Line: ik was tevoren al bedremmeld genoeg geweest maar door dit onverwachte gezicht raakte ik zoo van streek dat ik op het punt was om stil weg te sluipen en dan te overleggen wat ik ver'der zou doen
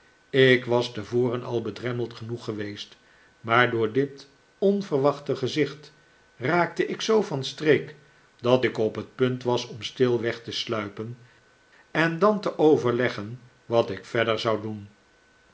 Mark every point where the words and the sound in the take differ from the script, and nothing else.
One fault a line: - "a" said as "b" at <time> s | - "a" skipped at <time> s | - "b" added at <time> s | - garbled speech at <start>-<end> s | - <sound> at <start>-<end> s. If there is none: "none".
none